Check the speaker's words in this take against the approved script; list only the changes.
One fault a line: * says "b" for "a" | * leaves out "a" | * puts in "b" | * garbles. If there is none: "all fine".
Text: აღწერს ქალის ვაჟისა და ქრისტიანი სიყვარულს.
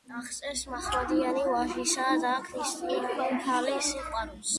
* says "მაჰმადიანი" for "ქალის"
* puts in "ქალის"